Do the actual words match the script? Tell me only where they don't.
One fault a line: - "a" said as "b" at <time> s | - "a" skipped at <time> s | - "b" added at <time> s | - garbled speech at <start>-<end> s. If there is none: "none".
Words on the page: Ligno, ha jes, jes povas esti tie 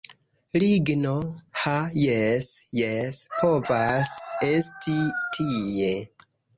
none